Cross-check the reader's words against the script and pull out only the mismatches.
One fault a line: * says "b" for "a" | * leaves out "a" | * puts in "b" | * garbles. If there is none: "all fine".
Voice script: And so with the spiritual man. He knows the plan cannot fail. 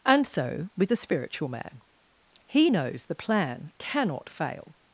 all fine